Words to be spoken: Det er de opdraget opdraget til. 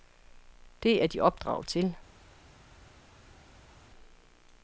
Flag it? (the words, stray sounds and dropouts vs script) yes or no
yes